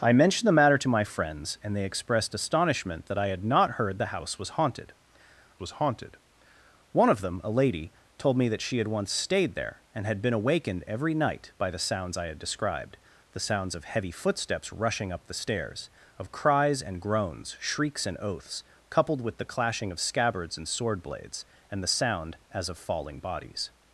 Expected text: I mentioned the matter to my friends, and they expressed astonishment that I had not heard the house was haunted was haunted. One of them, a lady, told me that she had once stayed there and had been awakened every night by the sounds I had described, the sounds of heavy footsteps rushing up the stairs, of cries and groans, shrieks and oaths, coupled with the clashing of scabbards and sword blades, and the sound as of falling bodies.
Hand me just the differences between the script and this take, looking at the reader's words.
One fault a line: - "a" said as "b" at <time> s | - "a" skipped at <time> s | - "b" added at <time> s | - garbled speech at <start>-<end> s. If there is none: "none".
none